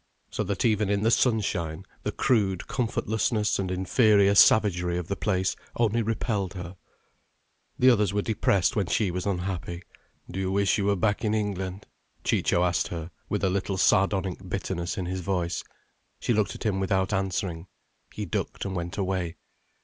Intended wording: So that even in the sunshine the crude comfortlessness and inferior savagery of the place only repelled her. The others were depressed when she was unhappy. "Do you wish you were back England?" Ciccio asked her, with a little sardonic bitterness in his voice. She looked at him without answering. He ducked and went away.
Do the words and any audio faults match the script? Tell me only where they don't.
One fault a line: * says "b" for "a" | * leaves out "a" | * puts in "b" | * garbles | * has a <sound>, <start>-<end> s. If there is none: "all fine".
* puts in "in"